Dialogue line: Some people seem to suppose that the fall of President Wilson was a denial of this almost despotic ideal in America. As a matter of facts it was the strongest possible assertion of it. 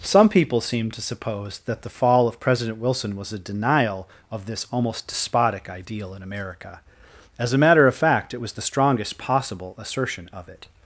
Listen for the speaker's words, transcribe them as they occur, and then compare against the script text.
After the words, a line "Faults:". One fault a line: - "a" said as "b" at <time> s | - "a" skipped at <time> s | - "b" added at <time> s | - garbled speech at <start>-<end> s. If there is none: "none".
Some people seem to suppose that the fall of President Wilson was a denial of this almost despotic ideal in America. As a matter of fact it was the strongest possible assertion of it.
Faults:
- "facts" said as "fact" at 8.0 s